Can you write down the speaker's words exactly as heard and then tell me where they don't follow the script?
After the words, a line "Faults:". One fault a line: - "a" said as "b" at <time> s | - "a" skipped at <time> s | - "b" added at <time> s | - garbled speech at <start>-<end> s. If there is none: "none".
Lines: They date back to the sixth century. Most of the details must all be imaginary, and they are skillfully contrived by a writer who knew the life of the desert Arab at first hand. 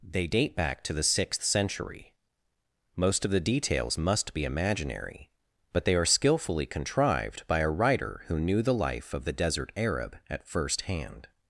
They date back to the sixth century. Most of the details must be imaginary, but they are skillfully contrived by a writer who knew the life of the desert Arab at first hand.
Faults:
- "all" skipped at 4.3 s
- "and" said as "but" at 5.7 s